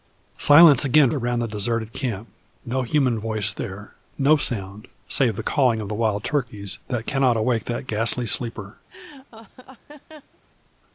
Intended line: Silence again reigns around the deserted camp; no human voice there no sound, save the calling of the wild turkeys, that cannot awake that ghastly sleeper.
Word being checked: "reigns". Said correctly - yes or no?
no